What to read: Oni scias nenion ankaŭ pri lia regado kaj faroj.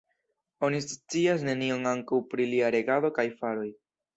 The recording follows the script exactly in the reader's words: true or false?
true